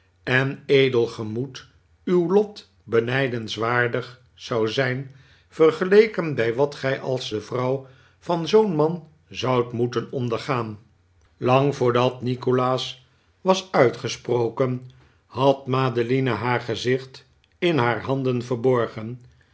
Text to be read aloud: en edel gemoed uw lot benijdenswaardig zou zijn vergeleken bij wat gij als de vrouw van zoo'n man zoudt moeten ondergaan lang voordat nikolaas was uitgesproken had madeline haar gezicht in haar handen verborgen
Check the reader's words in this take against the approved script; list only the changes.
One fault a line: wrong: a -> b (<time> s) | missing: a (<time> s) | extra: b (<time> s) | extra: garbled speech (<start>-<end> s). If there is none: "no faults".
no faults